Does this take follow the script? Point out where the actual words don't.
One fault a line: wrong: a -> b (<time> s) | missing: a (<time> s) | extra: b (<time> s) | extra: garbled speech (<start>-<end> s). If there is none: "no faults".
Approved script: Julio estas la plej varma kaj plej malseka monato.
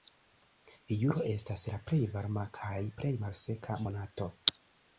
no faults